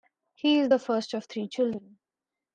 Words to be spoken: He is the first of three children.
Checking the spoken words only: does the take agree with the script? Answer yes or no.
yes